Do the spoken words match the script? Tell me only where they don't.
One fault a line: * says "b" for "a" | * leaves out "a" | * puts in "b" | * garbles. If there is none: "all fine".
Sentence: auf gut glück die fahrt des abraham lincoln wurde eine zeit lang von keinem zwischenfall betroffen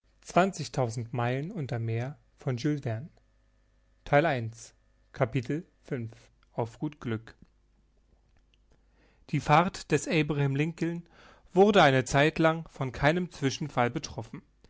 all fine